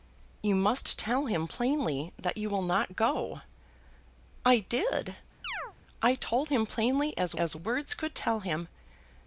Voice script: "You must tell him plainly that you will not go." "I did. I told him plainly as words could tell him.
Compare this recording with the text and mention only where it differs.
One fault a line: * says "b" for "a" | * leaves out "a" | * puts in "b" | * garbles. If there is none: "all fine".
* puts in "as"